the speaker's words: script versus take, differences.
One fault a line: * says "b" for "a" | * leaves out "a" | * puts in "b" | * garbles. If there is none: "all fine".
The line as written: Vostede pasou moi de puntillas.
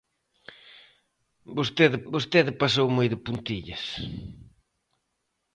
* puts in "vostede"